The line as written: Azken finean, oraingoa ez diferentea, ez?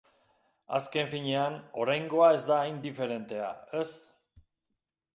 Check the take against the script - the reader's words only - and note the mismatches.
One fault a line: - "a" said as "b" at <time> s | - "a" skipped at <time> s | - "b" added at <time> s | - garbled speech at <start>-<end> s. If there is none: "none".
- "da hain" added at 2.5 s